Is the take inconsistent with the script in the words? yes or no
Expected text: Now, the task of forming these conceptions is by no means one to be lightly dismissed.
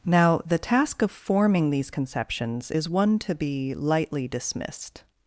yes